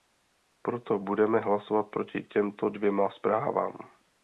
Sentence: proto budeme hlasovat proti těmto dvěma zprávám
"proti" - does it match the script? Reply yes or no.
yes